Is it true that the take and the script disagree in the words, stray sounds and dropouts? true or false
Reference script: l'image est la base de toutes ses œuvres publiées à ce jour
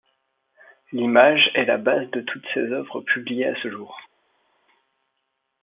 false